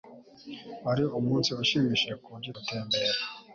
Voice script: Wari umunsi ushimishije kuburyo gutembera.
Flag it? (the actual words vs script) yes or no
no